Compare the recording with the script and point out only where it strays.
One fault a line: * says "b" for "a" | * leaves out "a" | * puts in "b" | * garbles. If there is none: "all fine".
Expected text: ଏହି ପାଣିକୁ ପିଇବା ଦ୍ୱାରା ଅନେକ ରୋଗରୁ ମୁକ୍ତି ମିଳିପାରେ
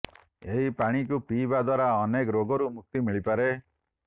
all fine